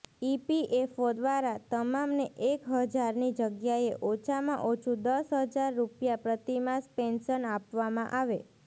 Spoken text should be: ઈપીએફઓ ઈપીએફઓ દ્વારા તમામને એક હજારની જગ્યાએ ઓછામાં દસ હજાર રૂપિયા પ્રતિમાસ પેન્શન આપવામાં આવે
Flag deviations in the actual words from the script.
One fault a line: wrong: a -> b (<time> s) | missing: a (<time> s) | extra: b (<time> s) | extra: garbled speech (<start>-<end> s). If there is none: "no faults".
missing: ઈપીએફઓ (1.1 s)
extra: ઓછું (4.7 s)